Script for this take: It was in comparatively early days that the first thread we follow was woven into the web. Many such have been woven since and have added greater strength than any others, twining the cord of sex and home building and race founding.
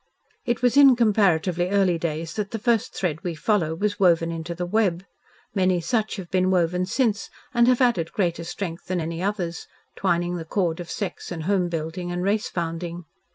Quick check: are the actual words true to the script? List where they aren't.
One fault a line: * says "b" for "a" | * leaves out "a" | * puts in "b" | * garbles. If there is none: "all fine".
all fine